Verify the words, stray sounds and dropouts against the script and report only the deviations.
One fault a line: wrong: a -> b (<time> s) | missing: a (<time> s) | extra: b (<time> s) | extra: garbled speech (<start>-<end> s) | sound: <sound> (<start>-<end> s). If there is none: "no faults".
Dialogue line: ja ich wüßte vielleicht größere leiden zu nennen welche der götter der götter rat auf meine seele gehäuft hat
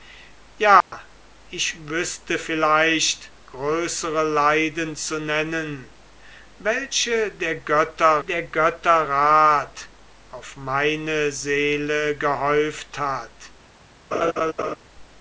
sound: dropout (0.8-0.9 s)
sound: laugh (14.1-14.8 s)